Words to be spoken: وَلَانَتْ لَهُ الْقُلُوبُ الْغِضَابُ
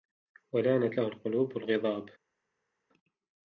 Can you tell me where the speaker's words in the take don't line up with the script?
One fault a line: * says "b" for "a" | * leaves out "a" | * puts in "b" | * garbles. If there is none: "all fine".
all fine